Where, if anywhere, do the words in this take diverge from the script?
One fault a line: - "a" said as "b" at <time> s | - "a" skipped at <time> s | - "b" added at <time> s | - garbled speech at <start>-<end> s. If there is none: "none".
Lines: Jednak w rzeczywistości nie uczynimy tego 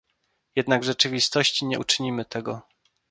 none